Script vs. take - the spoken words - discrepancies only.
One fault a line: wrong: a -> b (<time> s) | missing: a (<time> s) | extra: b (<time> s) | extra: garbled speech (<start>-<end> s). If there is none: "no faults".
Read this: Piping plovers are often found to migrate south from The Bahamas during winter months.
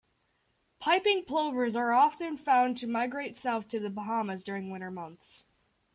wrong: from -> to (3.7 s)